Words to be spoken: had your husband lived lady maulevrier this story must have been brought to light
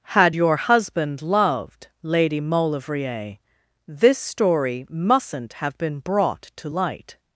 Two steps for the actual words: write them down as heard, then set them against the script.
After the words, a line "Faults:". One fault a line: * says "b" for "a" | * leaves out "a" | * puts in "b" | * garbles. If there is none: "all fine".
had your husband loved lady maulevrier this story mustn't have been brought to light
Faults:
* says "loved" for "lived"
* says "mustn't" for "must"